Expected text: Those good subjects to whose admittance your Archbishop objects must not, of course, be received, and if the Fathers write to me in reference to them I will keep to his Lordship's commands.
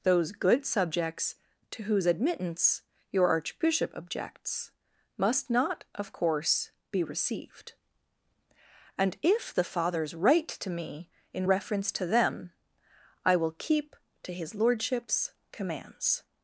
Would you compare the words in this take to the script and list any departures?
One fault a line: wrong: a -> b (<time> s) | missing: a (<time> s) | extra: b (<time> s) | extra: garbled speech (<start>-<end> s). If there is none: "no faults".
no faults